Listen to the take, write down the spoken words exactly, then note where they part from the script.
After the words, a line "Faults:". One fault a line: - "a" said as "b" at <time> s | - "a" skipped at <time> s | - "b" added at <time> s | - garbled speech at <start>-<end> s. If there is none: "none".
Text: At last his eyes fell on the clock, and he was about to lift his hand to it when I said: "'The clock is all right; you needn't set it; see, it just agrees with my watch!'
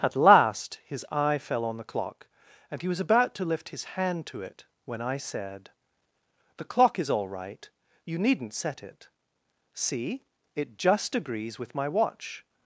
At last his eye fell on the clock, and he was about to lift his hand to it when I said: "'The clock is all right; you needn't set it; see, it just agrees with my watch!'
Faults:
- "eyes" said as "eye" at 1.1 s